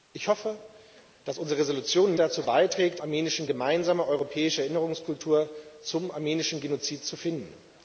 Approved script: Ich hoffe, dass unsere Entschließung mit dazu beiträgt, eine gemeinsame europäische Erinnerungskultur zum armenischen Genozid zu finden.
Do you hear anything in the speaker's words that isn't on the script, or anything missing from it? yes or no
yes